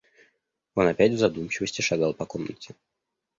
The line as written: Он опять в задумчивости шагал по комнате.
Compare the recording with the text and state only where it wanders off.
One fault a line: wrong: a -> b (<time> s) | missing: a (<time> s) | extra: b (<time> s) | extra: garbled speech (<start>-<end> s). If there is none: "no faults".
no faults